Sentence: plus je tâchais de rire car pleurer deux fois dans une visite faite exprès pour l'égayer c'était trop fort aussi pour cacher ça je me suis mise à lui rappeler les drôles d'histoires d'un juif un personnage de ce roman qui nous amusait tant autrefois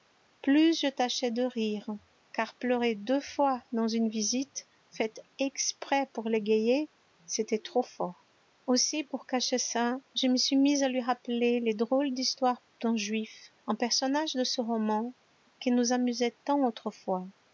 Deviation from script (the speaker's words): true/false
false